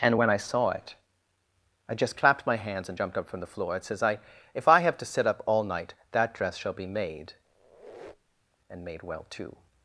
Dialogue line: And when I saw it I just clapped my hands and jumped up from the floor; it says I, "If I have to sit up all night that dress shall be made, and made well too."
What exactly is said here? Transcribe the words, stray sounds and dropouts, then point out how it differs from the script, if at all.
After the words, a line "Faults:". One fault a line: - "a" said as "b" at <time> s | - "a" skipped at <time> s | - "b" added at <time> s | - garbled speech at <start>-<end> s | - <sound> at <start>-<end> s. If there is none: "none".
And when I saw it I just clapped my hands and jumped up from the floor; it says I, "If I have to sit up all night that dress shall be made, and made well too."
Faults:
- squeak at 7.4-8.6 s